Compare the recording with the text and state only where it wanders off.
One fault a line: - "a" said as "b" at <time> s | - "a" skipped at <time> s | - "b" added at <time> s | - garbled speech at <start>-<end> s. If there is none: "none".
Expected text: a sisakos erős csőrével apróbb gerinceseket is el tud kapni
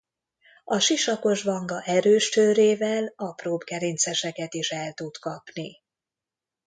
- "vanga" added at 1.4 s